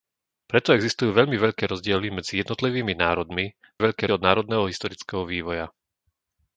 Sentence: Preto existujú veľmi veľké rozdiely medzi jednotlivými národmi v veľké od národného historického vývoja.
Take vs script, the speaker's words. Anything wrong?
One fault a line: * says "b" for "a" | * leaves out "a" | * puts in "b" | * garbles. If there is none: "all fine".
all fine